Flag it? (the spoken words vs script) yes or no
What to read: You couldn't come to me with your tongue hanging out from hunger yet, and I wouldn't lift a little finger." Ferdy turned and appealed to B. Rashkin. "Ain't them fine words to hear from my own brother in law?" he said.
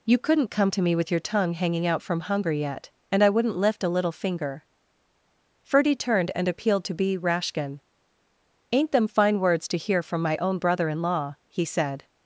no